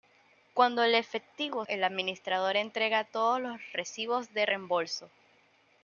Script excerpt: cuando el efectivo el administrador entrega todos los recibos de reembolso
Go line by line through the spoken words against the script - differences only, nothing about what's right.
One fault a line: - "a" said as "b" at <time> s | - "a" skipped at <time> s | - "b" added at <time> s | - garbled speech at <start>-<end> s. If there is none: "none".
none